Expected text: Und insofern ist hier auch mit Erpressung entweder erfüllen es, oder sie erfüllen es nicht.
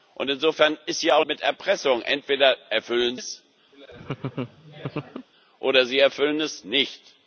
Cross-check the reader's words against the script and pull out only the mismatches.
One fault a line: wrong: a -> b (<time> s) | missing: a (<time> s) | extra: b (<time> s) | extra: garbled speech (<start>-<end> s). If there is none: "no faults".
no faults